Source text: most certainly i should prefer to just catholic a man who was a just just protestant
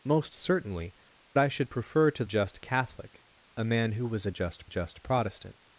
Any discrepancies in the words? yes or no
no